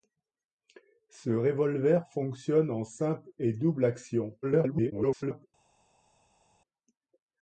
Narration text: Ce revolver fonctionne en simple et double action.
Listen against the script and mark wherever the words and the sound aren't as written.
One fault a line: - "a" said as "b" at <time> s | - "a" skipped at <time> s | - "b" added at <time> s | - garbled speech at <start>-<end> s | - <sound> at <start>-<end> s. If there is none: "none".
- garbled speech at 4.4-5.5 s